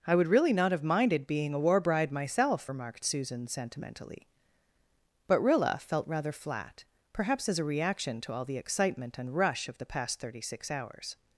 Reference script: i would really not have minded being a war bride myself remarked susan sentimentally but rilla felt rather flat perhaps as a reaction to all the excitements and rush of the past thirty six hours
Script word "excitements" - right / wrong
wrong